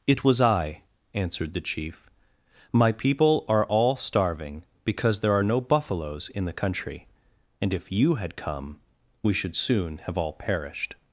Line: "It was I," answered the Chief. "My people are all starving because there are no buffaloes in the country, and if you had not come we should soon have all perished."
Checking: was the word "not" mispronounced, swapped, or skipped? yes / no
yes